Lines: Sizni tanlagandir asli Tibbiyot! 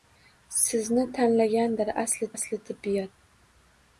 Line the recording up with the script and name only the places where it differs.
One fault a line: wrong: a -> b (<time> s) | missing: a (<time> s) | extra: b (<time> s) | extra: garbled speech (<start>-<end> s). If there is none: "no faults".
extra: asli (2.4 s)